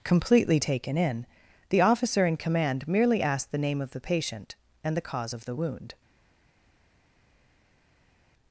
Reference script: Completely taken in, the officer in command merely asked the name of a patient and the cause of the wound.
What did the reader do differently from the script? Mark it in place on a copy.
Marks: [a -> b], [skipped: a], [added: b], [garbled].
Completely taken in, the officer in command merely asked the name of [a -> the] patient and the cause of the wound.